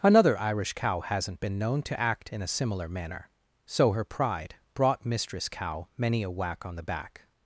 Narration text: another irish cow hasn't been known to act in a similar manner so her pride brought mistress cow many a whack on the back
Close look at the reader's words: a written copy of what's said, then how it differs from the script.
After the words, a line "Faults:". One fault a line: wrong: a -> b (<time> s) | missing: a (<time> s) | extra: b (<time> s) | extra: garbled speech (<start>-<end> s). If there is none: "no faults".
another irish cow hasn't been known to act in a similar manner so her pride brought mistress cow many a whack on the back
Faults:
no faults